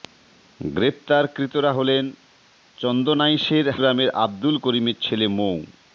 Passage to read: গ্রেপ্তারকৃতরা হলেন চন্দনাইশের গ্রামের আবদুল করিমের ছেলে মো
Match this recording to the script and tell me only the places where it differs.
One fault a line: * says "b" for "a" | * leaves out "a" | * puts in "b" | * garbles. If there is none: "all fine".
all fine